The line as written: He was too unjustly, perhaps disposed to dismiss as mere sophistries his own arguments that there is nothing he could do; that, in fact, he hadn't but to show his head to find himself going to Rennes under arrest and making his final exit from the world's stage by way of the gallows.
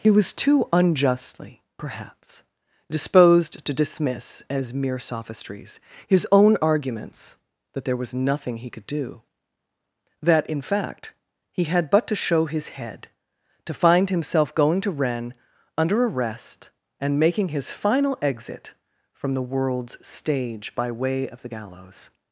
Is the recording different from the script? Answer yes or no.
yes